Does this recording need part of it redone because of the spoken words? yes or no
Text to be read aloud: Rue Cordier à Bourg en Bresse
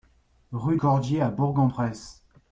no